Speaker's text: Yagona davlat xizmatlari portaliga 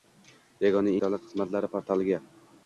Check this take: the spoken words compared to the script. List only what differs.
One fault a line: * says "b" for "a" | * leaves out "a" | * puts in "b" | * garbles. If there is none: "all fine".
all fine